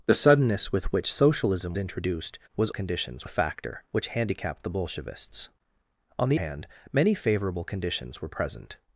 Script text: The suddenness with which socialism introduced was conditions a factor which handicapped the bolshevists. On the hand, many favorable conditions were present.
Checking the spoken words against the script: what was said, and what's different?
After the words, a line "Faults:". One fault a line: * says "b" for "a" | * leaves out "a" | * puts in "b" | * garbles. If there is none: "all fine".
The suddenness with which socialism introduced was conditions a factor which handicapped the bolshevists. On the hand, many favorable conditions were present.
Faults:
all fine